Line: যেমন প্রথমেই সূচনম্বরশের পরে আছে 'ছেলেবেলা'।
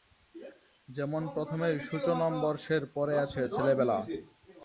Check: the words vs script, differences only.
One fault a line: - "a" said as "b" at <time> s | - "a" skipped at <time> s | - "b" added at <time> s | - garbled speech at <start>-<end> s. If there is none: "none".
none